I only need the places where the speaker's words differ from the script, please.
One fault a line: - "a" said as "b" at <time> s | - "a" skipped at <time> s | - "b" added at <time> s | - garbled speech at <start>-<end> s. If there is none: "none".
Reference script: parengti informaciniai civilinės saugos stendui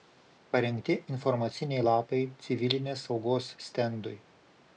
- "lapai" added at 1.9 s